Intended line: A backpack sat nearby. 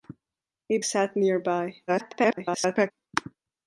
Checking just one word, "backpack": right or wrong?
wrong